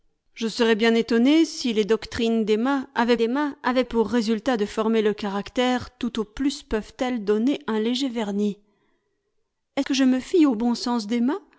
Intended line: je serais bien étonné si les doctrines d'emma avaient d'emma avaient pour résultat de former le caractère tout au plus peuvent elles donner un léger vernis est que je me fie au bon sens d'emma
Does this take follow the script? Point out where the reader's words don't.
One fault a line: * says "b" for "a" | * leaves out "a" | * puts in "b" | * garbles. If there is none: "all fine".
all fine